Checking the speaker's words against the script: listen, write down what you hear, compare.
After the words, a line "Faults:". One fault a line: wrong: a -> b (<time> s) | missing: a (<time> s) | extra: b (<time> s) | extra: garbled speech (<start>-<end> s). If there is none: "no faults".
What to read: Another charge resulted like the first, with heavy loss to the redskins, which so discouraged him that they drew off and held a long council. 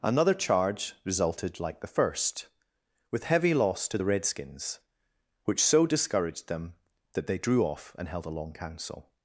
Another charge resulted like the first, with heavy loss to the redskins, which so discouraged them that they drew off and held a long council.
Faults:
wrong: him -> them (6.5 s)